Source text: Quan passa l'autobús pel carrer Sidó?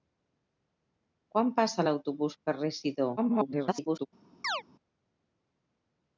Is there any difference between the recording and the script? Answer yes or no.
yes